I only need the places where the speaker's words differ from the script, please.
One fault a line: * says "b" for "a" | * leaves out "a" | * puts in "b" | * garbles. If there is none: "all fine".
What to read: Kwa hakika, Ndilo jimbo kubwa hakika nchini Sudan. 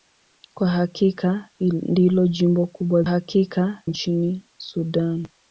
all fine